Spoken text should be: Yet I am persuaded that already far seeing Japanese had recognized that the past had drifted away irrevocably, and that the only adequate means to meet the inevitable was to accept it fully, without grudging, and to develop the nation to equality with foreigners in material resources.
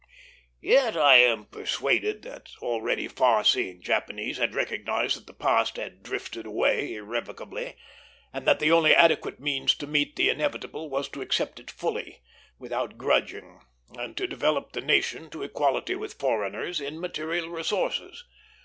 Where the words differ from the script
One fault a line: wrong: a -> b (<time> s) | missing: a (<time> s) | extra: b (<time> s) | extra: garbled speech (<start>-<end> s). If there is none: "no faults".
no faults